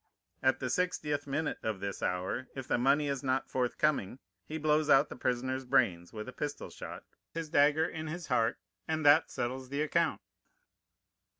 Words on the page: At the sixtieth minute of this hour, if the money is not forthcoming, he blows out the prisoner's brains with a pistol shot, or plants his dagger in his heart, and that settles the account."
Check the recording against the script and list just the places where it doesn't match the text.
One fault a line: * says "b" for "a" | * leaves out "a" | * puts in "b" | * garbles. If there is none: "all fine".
* leaves out "or plants"